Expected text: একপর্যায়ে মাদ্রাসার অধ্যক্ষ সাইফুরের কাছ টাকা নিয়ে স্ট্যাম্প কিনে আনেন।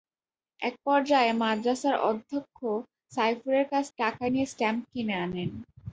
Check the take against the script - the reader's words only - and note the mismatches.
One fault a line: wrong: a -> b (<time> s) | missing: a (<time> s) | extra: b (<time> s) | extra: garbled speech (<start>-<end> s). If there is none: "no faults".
no faults